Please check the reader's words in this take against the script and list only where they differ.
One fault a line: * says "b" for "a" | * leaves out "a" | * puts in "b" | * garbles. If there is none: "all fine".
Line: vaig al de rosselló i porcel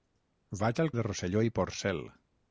all fine